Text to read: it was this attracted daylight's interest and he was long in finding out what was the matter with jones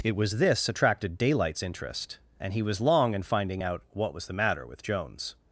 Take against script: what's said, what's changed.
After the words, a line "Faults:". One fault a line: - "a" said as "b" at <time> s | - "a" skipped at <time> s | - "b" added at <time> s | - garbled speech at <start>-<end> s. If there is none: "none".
it was this attracted daylight's interest and he was long in finding out what was the matter with jones
Faults:
none